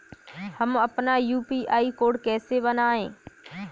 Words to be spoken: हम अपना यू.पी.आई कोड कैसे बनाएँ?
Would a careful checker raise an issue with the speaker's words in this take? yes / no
no